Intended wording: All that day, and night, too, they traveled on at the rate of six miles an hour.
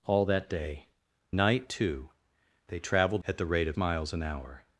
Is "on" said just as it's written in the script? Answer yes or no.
no